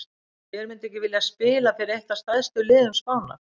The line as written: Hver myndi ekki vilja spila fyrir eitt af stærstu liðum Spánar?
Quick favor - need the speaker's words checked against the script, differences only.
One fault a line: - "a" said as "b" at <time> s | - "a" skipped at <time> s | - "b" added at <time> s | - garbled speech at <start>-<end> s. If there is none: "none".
none